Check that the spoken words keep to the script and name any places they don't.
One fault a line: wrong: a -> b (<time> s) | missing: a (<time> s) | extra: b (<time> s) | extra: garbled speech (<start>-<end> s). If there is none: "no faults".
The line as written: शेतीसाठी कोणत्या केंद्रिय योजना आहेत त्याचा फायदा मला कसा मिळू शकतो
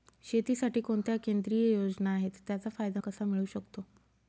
missing: मला (3.0 s)